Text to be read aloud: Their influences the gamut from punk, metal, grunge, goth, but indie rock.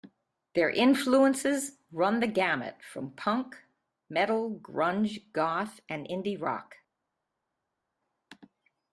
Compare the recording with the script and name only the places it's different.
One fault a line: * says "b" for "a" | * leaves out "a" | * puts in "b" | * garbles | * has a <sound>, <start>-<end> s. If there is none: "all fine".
* puts in "run"
* says "and" for "but"